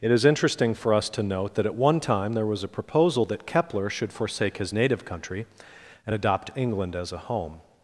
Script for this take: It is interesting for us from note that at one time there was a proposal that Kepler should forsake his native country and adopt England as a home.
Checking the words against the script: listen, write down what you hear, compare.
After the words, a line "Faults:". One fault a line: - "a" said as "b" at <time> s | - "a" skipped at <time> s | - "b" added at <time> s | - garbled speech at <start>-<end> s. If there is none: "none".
It is interesting for us to note that at one time there was a proposal that Kepler should forsake his native country and adopt England as a home.
Faults:
- "from" said as "to" at 1.1 s